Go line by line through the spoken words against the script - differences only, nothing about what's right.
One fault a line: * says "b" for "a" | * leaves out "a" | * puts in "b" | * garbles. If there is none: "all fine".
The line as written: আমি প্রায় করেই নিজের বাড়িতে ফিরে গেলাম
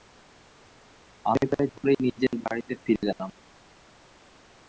all fine